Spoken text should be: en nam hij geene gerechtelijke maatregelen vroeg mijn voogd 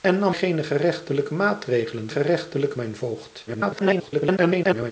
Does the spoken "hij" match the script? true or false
false